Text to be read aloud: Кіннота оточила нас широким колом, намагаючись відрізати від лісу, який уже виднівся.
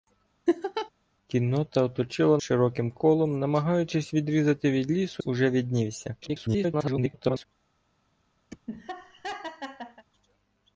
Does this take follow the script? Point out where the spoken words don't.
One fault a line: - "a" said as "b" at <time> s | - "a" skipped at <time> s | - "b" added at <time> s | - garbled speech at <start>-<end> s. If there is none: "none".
- "нас" skipped at 2.4 s
- "який" skipped at 5.2 s
- garbled speech at 6.2-7.5 s